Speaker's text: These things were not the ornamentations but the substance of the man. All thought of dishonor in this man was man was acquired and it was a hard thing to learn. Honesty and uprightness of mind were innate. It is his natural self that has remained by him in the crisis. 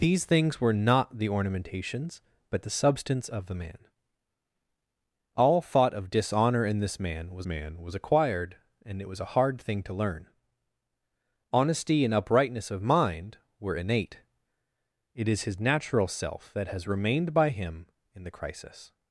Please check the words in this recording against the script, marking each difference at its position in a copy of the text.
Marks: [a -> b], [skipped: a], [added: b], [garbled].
These things were not the ornamentations but the substance of the man. All thought of dishonor in this man was man was acquired and it was a hard thing to learn. Honesty and uprightness of mind were innate. It is his natural self that has remained by him in the crisis.